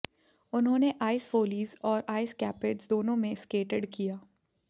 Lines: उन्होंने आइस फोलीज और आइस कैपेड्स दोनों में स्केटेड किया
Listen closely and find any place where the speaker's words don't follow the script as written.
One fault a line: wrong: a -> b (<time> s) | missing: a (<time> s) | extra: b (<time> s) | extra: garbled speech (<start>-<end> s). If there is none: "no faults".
no faults